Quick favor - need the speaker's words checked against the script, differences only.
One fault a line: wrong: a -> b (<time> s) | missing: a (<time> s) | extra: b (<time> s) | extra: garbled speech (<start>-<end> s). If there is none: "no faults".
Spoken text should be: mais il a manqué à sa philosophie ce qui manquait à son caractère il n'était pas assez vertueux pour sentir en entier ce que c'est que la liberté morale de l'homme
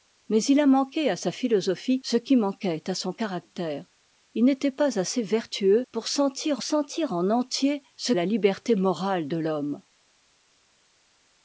extra: sentir (6.6 s)
missing: que c'est que (8.1 s)